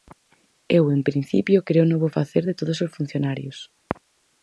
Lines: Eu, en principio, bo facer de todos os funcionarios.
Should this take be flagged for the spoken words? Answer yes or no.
yes